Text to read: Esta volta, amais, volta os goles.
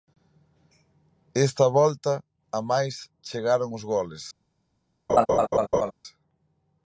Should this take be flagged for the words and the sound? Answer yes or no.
yes